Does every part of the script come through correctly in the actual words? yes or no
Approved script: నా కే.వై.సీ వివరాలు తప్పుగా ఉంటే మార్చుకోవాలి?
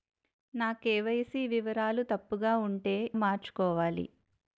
yes